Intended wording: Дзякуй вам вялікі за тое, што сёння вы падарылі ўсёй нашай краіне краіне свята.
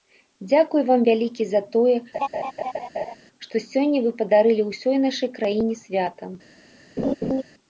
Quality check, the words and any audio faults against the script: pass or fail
fail